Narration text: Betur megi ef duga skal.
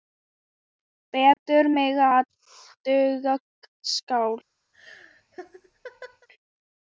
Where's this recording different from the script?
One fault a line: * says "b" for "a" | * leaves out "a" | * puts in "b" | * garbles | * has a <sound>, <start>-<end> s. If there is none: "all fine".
* has a dropout, 1.3-1.4 s
* has a laugh, 4.7-6.3 s